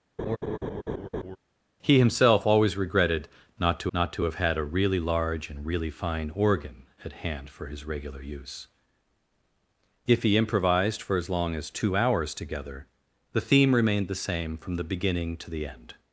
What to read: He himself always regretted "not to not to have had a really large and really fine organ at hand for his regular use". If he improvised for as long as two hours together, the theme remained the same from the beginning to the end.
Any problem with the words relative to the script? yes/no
no